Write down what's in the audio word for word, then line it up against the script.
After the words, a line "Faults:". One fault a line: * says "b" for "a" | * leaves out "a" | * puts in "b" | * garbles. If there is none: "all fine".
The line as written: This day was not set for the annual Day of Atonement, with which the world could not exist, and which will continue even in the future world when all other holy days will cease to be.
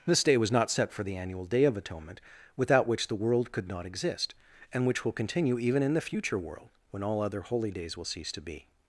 This day was not set for the annual Day of Atonement, without which the world could not exist, and which will continue even in the future world when all other holy days will cease to be.
Faults:
* says "without" for "with"